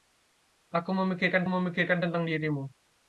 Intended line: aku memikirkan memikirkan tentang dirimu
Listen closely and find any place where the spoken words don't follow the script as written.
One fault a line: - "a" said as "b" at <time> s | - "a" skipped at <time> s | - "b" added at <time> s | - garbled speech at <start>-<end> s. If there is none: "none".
none